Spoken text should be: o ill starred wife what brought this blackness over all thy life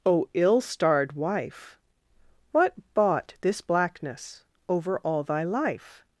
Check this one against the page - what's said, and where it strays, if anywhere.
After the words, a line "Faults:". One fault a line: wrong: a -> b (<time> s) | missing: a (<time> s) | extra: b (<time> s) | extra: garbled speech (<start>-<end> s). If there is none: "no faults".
o ill starred wife what bought this blackness over all thy life
Faults:
wrong: brought -> bought (3.0 s)